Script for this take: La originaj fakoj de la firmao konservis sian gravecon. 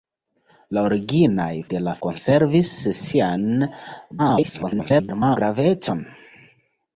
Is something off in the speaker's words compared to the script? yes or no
yes